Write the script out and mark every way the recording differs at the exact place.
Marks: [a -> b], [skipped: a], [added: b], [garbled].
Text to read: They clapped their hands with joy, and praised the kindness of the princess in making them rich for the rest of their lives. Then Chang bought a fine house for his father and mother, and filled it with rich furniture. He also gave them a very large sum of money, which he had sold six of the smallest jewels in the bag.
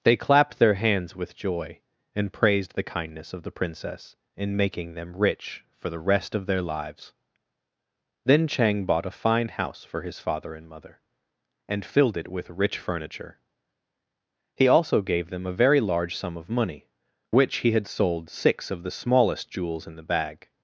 They clapped their hands with joy, and praised the kindness of the princess in making them rich for the rest of their lives. Then Chang bought a fine house for his father and mother, and filled it with rich furniture. He also gave them a very large sum of money, which he had sold six of the smallest jewels in the bag.